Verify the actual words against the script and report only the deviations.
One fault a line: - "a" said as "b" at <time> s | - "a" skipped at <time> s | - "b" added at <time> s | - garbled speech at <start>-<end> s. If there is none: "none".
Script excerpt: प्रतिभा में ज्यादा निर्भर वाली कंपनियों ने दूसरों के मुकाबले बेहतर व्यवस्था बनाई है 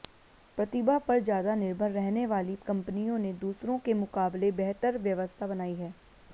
- "में" said as "पर" at 1.0 s
- "रहने" added at 1.9 s